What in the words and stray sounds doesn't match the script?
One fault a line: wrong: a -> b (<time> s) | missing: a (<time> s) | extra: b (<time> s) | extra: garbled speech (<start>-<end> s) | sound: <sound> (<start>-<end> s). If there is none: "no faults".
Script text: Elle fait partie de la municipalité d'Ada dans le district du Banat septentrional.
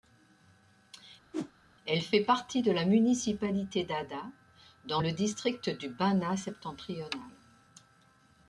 sound: whoosh (1.3-1.5 s)